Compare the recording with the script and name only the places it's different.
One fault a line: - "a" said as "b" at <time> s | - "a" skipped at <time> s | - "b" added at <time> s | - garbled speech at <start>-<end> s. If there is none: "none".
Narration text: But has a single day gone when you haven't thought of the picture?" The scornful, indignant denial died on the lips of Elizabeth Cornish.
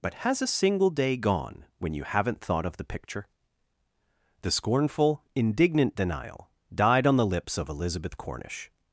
none